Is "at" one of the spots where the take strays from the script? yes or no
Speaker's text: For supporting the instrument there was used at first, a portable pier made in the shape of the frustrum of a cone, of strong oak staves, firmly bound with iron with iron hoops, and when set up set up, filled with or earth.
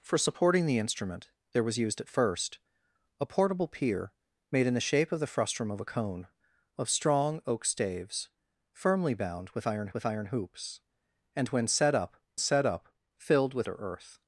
no